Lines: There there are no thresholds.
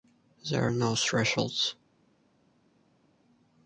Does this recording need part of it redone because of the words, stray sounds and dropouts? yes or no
yes